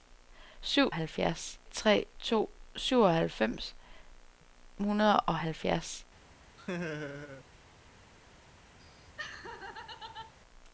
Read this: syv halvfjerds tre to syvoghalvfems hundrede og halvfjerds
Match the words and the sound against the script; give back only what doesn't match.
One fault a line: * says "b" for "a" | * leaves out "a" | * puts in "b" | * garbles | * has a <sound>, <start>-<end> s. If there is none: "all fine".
* has a laugh, 6.6-7.4 s
* has a laugh, 8.8-10.3 s